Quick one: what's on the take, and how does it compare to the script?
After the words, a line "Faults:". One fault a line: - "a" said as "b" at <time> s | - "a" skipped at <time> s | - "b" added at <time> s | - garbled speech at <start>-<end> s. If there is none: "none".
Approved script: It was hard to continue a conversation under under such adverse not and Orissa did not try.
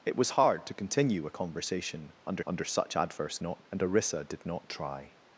It was hard to continue a conversation under under such adverse not and Orissa did not try.
Faults:
none